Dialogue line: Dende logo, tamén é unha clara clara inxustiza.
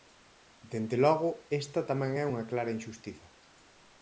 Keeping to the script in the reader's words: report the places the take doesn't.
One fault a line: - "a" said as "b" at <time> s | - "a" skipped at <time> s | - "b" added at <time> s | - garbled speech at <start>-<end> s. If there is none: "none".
- "esta" added at 1.6 s
- "clara" skipped at 2.7 s